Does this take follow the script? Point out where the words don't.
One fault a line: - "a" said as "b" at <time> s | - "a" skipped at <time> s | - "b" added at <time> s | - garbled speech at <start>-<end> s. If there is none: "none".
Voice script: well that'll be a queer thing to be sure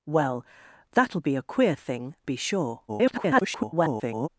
- "to" skipped at 2.1 s
- garbled speech at 2.9-4.3 s